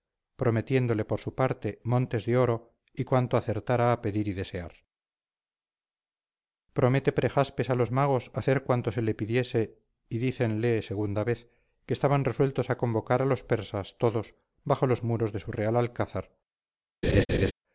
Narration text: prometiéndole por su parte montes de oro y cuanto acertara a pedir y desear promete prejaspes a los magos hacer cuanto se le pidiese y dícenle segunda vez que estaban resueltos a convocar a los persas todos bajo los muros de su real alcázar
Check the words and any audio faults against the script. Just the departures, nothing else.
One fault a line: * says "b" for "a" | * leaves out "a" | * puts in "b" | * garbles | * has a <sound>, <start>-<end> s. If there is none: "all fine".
* has a laugh, 17.0-17.5 s